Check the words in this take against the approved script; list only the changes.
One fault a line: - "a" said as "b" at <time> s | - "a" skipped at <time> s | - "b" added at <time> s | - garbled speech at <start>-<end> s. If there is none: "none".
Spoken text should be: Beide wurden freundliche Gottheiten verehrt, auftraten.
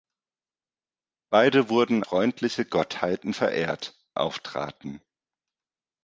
none